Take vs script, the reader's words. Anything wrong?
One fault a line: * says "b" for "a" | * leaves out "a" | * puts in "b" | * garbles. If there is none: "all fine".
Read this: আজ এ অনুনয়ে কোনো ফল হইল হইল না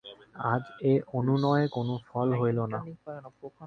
* leaves out "হইল"